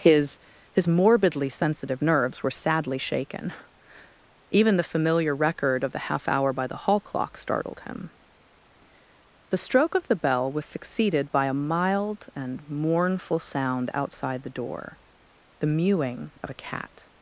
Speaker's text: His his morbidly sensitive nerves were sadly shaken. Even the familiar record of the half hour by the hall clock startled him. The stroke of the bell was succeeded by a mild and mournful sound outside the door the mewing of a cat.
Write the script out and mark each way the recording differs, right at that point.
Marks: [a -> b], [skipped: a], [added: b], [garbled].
His his morbidly sensitive nerves were sadly shaken. Even the familiar record of the half hour by the hall clock startled him. The stroke of the bell was succeeded by a mild and mournful sound outside the door the mewing of a cat.